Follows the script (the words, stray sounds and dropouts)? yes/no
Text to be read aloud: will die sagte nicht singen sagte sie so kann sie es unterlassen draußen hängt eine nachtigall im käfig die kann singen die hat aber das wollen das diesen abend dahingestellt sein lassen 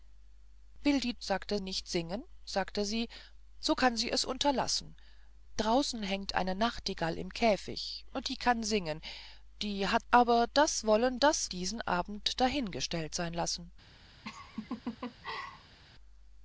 no